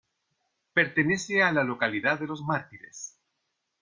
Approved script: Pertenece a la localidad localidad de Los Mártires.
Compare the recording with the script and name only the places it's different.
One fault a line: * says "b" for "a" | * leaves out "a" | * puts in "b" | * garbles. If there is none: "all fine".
* leaves out "localidad"